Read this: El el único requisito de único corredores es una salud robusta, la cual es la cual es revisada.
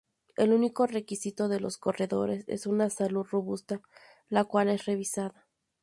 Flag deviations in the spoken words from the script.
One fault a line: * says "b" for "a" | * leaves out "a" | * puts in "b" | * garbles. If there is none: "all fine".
* leaves out "el"
* says "los" for "único"
* leaves out "la cual es"